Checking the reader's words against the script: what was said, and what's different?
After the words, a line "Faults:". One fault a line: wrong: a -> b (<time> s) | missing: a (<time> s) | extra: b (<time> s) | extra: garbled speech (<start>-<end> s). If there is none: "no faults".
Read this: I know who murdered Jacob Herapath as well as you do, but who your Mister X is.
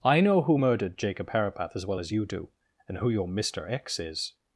I know who murdered Jacob Herapath as well as you do, and who your Mister X is.
Faults:
wrong: but -> and (2.9 s)